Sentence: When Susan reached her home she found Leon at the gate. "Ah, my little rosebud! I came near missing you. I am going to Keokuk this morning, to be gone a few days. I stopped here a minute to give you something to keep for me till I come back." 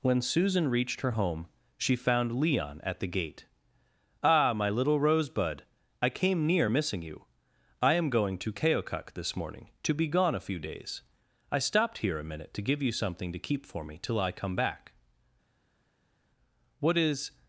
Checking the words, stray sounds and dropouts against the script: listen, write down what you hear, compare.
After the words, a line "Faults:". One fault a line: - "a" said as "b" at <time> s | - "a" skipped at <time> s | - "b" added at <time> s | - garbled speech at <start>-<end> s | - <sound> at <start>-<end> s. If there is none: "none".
When Susan reached her home she found Leon at the gate. "Ah, my little rosebud! I came near missing you. I am going to Keokuk this morning, to be gone a few days. I stopped here a minute to give you something to keep for me till I come back." "What is
Faults:
- "What is" added at 16.8 s